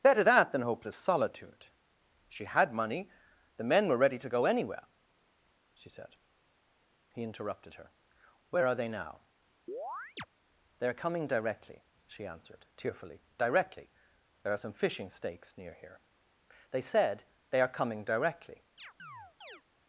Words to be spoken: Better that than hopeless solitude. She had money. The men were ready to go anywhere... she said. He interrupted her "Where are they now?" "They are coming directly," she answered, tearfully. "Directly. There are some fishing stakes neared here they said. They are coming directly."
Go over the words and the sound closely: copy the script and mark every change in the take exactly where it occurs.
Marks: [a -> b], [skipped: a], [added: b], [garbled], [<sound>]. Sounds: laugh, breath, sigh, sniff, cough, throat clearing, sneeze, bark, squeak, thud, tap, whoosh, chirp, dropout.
Better that than hopeless solitude. She had money. The men were ready to go anywhere... she said. He interrupted her "Where are they now?" [chirp] "They are coming directly," she answered, tearfully. "Directly. There are some fishing stakes [neared -> near] here they said. They are coming directly." [chirp]